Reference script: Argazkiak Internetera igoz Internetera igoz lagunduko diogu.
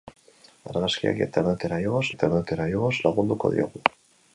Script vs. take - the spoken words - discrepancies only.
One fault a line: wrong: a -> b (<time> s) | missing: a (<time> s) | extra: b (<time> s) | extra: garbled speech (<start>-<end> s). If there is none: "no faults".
no faults